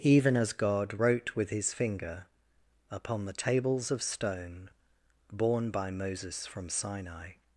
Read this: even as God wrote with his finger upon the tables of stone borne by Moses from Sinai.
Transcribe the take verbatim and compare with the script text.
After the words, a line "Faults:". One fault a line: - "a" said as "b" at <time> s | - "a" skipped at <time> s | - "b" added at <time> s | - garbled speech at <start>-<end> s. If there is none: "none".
even as God wrote with his finger upon the tables of stone borne by Moses from Sinai.
Faults:
none